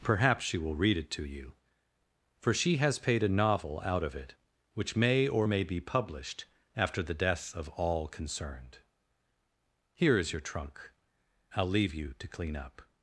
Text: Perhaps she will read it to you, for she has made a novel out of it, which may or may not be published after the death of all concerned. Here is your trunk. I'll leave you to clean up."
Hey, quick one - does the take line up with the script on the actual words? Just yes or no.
no